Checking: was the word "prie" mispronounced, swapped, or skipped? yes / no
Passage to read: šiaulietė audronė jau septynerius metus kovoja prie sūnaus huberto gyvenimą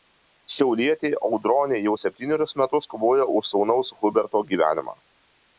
yes